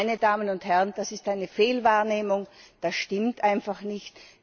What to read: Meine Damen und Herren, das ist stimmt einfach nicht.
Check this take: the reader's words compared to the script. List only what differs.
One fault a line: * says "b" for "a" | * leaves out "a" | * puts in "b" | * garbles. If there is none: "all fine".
* puts in "eine Fehlwahrnehmung das"